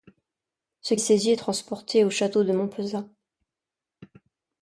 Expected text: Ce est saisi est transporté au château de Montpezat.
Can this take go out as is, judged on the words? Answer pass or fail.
pass